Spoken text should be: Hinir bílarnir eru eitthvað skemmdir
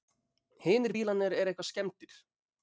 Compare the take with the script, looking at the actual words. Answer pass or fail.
pass